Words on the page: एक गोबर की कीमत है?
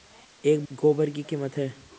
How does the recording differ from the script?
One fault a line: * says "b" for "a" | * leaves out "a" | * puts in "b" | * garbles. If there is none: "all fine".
all fine